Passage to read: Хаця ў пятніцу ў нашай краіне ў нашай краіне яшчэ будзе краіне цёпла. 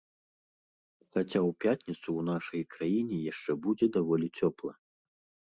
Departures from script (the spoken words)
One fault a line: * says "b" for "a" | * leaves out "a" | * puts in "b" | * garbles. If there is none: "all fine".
* leaves out "ў нашай краіне"
* says "даволі" for "краіне"